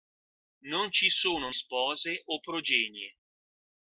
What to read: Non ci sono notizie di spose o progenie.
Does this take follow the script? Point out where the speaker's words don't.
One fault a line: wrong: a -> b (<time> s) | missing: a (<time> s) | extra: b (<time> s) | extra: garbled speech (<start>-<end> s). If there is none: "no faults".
missing: notizie di (1.5 s)